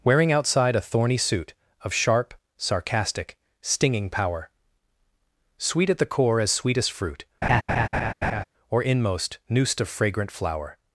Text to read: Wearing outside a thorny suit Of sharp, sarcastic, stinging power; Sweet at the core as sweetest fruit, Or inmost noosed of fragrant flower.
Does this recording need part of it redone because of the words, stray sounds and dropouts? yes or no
yes